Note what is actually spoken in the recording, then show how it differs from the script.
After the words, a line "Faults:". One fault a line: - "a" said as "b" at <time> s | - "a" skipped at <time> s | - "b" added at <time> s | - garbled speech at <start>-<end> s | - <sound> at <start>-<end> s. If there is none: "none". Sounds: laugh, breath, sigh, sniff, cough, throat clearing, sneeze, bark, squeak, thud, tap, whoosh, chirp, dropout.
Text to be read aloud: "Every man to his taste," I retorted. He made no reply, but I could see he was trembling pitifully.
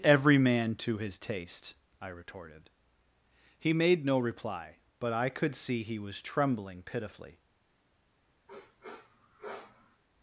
"Every man to his taste," I retorted. He made no reply, but I could see he was trembling pitifully.
Faults:
- sniff at 8.5-10.0 s